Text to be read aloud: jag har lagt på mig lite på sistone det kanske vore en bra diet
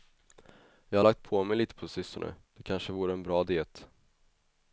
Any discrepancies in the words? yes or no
no